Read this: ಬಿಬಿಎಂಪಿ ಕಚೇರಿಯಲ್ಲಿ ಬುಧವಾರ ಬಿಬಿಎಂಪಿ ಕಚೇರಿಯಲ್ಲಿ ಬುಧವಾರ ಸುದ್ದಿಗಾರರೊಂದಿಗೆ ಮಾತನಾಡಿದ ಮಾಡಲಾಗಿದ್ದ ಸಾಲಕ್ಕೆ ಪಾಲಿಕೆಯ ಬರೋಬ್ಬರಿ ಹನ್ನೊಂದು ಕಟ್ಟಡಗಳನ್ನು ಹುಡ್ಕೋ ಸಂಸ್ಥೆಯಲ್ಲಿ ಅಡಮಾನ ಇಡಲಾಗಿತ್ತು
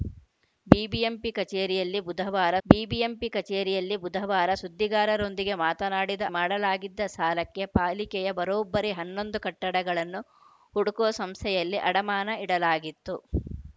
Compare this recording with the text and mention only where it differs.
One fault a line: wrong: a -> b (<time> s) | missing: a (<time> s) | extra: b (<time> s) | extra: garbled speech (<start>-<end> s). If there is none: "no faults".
no faults